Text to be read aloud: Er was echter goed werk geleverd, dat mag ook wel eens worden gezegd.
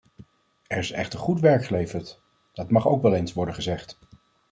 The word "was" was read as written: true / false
false